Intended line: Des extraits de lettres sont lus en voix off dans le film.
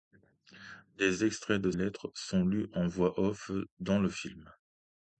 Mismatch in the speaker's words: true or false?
false